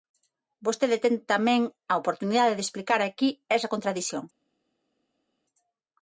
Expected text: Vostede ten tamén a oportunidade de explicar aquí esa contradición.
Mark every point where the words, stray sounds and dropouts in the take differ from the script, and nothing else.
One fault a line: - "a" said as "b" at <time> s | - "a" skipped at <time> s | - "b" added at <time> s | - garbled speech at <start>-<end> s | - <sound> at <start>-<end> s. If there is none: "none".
none